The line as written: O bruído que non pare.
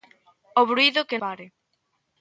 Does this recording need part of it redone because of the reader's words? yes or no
yes